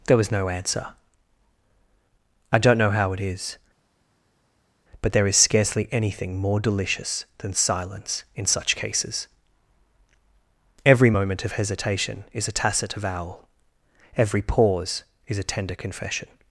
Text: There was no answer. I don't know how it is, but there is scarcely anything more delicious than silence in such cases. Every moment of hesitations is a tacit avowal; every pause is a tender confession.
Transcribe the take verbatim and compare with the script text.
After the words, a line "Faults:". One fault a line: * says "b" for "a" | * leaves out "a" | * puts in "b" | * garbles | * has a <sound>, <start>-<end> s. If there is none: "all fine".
There was no answer. I don't know how it is, but there is scarcely anything more delicious than silence in such cases. Every moment of hesitation is a tacit avowal; every pause is a tender confession.
Faults:
* says "hesitation" for "hesitations"